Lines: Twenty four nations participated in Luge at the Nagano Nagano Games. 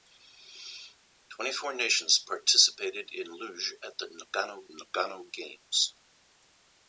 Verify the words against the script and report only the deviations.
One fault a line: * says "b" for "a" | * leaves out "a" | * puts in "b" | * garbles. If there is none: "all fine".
all fine